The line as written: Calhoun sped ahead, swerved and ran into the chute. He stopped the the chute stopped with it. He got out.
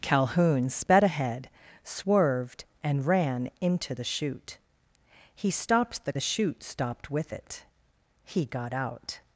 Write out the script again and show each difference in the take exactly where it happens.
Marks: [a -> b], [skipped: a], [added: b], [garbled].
Calhoun sped ahead, swerved and ran into the chute. He stopped the the chute stopped with it. He got out.